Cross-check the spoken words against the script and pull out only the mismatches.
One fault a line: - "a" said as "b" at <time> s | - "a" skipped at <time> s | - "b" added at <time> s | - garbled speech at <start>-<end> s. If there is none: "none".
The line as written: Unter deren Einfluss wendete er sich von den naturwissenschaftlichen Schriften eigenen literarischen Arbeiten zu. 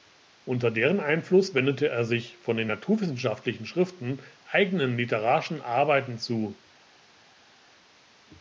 none